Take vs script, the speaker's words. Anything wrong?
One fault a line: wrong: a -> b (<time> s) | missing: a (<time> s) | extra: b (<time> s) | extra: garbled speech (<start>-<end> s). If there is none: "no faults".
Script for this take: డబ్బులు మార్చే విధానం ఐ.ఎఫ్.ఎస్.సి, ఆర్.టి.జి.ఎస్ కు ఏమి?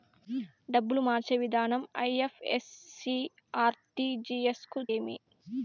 no faults